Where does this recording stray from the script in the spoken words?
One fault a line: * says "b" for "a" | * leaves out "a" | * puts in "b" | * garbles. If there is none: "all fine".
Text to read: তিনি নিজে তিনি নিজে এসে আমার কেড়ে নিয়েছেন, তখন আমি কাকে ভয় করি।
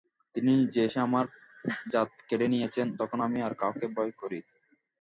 * leaves out "তিনি নিজে"
* puts in "জাত"
* puts in "আর"